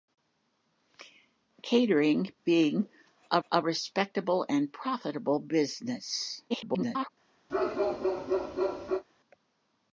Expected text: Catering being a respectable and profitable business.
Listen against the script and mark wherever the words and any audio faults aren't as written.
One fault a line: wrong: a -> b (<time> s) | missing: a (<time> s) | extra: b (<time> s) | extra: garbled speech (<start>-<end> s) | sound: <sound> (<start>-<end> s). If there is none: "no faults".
extra: a (3.5 s)
extra: garbled speech (6.5-7.1 s)
sound: bark (7.5-9.0 s)